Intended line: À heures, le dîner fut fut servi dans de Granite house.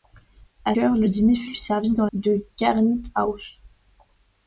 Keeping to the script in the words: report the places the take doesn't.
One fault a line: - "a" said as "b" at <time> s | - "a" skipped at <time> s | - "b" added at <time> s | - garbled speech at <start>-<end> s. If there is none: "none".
none